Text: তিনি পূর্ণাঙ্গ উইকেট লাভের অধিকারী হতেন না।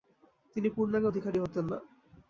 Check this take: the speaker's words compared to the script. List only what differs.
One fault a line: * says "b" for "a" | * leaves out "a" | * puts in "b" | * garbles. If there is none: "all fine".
* leaves out "উইকেট লাভের"